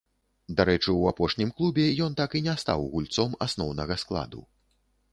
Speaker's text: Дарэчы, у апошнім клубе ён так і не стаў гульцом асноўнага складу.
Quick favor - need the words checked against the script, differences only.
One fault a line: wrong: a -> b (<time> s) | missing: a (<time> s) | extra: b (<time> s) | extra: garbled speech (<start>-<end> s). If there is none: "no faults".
no faults